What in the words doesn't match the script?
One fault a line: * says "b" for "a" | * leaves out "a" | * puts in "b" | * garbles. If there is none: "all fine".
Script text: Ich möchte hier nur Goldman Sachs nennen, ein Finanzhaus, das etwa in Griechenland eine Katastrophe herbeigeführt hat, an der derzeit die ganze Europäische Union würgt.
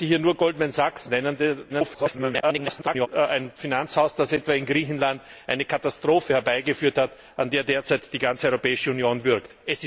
* garbles